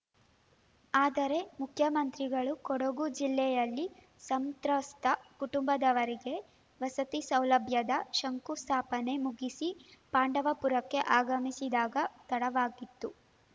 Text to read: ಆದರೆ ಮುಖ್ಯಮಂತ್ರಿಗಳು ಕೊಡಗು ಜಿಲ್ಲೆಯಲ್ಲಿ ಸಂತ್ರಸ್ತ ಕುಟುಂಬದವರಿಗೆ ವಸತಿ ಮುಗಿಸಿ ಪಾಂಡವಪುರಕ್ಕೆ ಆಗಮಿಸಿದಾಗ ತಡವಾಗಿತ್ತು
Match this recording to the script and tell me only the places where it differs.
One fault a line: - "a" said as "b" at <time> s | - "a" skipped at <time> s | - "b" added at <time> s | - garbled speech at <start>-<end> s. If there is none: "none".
- "ಸೌಲಭ್ಯದ ಶಂಕುಸ್ಥಾಪನೆ" added at 7.3 s